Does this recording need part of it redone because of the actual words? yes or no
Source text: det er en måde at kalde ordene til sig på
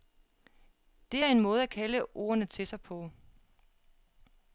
no